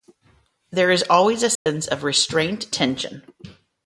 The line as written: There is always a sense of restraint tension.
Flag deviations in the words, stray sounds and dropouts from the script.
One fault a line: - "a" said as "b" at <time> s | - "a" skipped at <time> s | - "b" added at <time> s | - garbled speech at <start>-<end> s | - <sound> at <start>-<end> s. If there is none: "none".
- dropout at 1.6-1.7 s